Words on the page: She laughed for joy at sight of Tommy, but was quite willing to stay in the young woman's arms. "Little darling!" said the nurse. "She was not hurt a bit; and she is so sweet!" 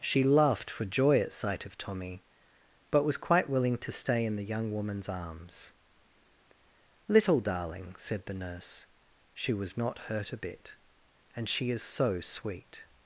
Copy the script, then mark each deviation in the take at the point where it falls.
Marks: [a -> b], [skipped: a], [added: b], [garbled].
She laughed for joy at sight of Tommy, but was quite willing to stay in the young woman's arms. "Little darling!" said the nurse. "She was not hurt a bit; and she is so sweet!"